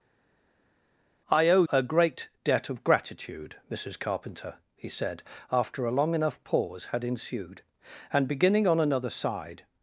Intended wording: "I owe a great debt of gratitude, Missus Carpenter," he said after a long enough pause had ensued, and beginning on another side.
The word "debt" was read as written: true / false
true